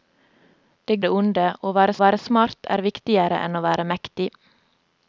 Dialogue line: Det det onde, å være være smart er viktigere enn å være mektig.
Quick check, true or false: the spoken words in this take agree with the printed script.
true